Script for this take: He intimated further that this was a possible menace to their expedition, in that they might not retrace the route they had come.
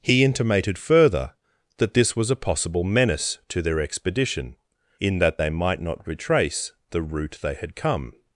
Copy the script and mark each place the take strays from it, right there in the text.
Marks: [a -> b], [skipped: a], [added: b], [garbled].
He intimated further that this was a possible menace to their expedition, in that they might not retrace the route they had come.